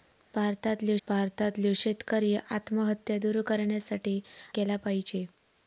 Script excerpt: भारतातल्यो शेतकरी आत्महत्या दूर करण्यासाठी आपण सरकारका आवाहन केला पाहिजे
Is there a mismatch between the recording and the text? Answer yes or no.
yes